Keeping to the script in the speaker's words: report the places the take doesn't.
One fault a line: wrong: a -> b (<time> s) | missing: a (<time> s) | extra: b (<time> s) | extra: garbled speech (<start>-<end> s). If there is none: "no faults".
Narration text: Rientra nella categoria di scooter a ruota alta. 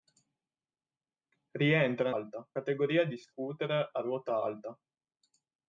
wrong: nella -> alta (2.1 s)